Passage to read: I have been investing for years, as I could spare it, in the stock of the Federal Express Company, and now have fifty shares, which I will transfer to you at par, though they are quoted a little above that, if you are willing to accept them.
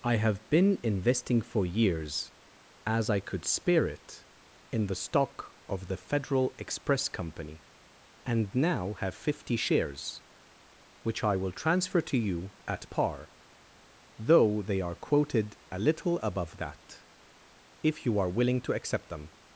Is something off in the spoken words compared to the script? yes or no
no